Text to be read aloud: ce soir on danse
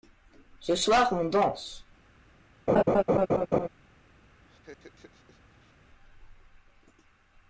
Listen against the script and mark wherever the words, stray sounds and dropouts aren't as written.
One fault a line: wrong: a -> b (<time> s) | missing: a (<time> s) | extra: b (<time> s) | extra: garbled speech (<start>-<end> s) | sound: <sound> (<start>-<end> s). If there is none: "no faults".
sound: laugh (2.7-3.7 s)
sound: laugh (4.5-5.7 s)